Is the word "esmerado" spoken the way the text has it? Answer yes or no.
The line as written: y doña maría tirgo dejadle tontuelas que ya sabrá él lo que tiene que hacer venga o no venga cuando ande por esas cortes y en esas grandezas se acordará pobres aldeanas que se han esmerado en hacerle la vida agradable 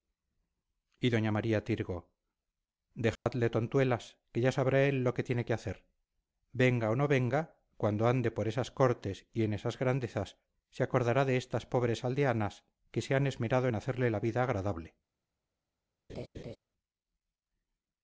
yes